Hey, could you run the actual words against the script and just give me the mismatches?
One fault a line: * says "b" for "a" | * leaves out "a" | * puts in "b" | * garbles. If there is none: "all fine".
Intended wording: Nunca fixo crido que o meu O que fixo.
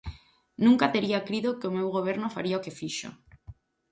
* says "tería" for "fixo"
* puts in "Goberno faría"